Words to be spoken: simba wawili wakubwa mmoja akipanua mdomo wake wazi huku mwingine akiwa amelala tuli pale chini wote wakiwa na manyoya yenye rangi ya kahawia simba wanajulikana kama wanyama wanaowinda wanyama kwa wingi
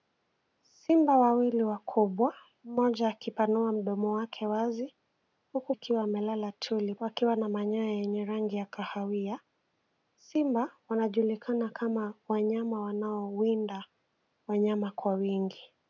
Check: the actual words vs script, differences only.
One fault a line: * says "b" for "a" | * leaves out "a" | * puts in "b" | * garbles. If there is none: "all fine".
* leaves out "mwingine"
* leaves out "pale chini wote"